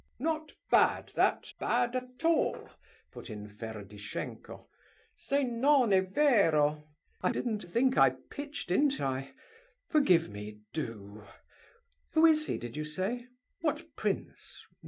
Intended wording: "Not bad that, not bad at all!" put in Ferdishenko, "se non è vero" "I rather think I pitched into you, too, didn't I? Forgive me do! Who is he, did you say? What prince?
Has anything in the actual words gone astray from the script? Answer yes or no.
yes